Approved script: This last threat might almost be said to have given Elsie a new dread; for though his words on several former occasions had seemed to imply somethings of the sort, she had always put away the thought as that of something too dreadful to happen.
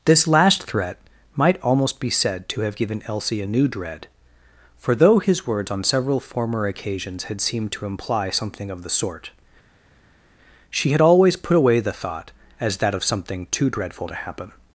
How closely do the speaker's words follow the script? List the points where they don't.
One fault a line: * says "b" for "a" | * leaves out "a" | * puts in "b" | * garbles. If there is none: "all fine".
* says "something" for "somethings"